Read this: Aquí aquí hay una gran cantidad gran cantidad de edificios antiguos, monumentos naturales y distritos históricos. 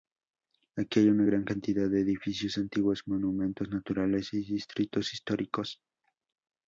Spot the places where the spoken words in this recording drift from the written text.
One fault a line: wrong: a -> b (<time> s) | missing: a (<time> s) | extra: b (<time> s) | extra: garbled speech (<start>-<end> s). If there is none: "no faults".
missing: aquí (1.0 s)
missing: gran cantidad (1.9 s)